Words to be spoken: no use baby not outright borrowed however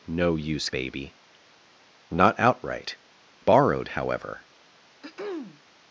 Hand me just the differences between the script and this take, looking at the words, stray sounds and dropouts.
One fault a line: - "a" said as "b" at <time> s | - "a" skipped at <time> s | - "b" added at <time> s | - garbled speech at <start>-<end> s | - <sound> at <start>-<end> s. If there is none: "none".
- throat clearing at 5.0-5.6 s